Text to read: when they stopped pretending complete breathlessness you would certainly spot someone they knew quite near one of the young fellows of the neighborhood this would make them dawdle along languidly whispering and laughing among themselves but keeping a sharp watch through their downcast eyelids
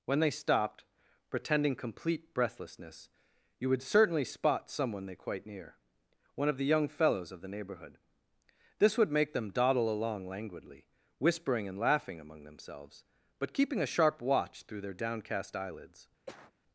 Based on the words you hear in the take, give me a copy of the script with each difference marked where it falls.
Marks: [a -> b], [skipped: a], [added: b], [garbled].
when they stopped pretending complete breathlessness you would certainly spot someone they [skipped: knew] quite near one of the young fellows of the neighborhood this would make them dawdle along languidly whispering and laughing among themselves but keeping a sharp watch through their downcast eyelids